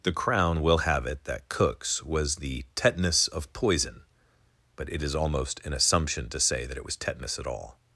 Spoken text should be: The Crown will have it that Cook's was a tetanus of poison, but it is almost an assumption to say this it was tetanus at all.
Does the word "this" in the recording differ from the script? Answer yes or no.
yes